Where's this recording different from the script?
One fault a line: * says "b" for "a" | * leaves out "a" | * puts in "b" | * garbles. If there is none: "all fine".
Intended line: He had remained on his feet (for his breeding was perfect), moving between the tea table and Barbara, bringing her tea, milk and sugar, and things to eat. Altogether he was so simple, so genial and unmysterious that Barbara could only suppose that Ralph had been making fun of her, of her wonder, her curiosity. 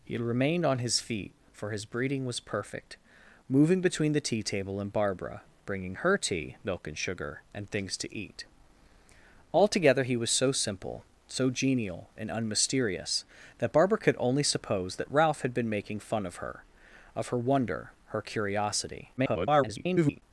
* garbles